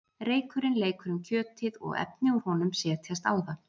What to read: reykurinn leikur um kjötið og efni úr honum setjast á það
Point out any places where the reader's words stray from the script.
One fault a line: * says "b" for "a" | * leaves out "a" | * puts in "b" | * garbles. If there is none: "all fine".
all fine